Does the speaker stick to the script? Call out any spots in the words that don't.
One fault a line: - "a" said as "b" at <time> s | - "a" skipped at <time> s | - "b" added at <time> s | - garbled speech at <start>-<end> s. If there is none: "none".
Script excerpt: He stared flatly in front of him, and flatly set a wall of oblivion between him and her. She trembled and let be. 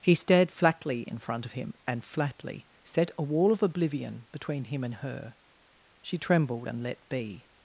none